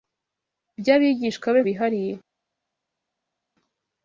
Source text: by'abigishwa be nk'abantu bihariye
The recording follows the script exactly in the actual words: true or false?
false